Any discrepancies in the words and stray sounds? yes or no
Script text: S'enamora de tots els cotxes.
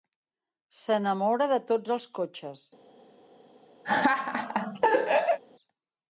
yes